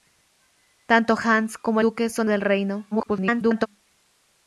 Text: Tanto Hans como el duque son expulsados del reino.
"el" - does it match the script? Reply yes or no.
no